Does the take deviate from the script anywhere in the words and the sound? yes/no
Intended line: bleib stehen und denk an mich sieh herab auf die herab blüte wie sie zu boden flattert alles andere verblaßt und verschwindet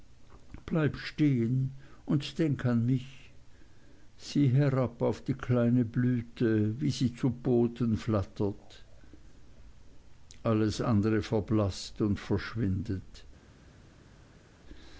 yes